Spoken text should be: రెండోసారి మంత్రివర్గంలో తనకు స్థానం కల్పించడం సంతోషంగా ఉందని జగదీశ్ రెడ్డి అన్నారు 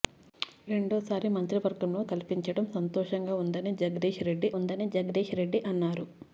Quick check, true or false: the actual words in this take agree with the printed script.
false